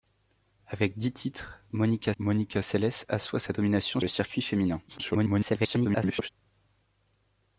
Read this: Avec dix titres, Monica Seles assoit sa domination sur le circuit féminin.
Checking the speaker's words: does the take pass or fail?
fail